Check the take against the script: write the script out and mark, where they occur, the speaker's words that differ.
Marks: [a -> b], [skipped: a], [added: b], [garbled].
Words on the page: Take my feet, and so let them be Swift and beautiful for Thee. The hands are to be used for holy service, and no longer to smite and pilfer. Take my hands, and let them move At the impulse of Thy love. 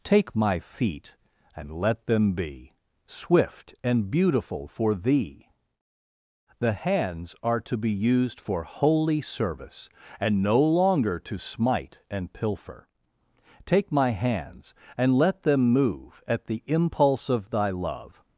Take my feet, and [skipped: so] let them be Swift and beautiful for Thee. The hands are to be used for holy service, and no longer to smite and pilfer. Take my hands, and let them move At the impulse of Thy love.